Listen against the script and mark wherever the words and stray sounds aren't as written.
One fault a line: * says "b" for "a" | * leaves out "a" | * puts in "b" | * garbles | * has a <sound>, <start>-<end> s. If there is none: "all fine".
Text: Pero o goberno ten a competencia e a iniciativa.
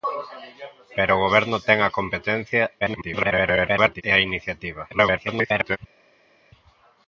* garbles
* garbles